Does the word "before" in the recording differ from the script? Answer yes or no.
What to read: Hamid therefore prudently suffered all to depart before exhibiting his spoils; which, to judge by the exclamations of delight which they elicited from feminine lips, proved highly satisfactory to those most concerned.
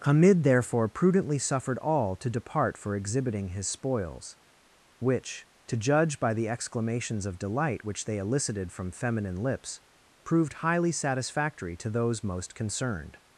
yes